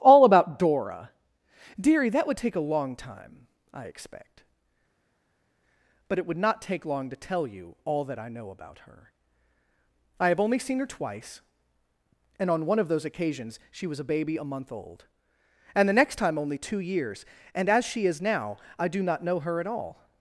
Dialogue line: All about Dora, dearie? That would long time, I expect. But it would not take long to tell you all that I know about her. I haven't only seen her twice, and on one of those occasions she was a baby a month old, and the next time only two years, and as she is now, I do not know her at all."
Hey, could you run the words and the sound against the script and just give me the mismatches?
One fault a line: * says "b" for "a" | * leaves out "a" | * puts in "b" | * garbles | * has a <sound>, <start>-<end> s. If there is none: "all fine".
* puts in "take a"
* says "have" for "haven't"